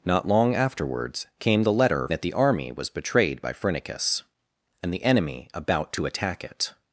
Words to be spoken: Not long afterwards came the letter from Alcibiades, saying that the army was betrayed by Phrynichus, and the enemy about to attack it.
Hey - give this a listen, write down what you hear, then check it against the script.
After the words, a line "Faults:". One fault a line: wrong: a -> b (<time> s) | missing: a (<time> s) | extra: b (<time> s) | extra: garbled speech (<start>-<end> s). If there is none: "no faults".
Not long afterwards came the letter that the army was betrayed by Phrynichus, and the enemy about to attack it.
Faults:
missing: from Alcibiades saying (2.1 s)